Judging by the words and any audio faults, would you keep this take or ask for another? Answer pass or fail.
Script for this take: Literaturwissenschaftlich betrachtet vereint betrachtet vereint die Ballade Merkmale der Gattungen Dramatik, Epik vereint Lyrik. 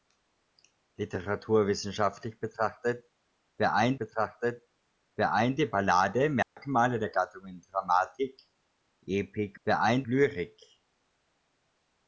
fail